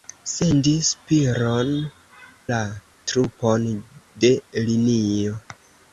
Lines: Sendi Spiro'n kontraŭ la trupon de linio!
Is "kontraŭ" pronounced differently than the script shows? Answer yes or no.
yes